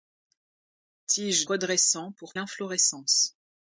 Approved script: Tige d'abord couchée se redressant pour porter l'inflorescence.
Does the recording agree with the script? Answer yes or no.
no